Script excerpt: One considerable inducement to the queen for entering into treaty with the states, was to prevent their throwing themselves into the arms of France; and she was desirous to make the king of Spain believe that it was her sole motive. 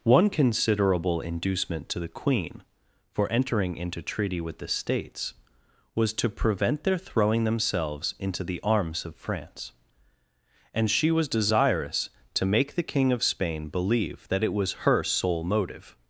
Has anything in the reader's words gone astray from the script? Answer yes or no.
no